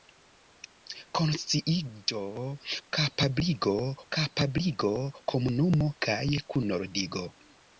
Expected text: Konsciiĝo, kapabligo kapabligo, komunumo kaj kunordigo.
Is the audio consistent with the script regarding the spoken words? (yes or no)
yes